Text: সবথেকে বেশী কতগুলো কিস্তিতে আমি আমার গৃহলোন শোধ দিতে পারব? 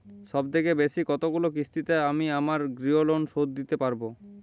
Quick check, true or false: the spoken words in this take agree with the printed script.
true